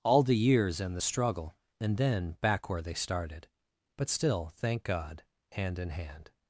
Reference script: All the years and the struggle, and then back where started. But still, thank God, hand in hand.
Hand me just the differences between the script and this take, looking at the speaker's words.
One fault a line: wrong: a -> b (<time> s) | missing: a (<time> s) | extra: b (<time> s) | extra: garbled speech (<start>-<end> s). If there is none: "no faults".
extra: they (2.8 s)